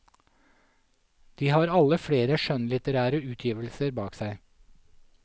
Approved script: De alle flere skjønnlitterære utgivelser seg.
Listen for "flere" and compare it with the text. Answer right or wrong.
right